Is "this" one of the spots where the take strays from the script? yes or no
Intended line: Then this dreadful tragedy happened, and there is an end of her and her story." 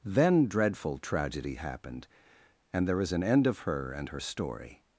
yes